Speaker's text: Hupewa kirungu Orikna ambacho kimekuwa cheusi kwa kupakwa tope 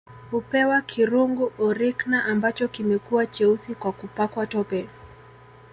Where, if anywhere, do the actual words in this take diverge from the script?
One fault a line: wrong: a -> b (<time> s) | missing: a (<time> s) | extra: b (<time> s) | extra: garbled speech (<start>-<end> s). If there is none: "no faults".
no faults